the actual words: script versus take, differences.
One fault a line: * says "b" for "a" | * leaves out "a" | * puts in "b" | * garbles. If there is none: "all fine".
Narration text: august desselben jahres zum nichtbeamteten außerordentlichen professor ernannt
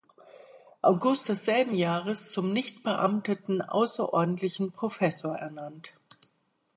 all fine